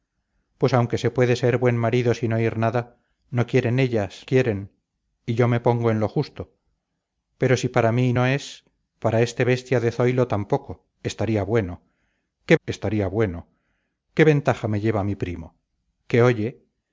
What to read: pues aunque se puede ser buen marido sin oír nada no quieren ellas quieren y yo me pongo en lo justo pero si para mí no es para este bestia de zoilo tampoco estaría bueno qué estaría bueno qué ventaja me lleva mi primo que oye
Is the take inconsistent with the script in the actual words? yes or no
no